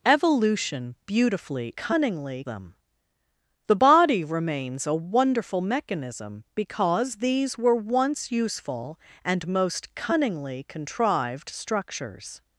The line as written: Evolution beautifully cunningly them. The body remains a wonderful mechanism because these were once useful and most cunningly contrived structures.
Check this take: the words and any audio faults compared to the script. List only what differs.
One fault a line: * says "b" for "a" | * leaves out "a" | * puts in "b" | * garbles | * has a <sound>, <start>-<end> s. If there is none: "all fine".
all fine